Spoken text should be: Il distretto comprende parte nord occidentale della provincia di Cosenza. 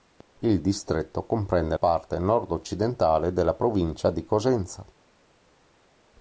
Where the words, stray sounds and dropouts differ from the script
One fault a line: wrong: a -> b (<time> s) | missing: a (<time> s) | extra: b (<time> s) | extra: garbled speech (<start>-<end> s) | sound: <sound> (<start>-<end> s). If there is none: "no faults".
no faults